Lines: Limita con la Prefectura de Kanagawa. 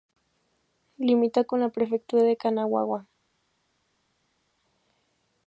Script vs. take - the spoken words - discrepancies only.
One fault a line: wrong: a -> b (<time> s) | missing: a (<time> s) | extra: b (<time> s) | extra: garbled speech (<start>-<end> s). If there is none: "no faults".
no faults